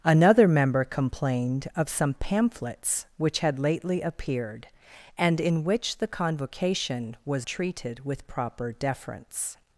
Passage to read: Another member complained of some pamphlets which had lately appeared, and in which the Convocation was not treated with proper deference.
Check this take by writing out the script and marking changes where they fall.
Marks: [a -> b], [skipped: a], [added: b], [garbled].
Another member complained of some pamphlets which had lately appeared, and in which the Convocation was [skipped: not] treated with proper deference.